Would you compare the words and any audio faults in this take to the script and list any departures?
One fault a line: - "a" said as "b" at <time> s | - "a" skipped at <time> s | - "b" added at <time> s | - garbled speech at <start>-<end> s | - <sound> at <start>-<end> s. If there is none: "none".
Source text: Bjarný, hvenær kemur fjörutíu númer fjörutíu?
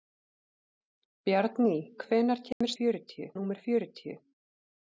- dropout at 2.5-2.6 s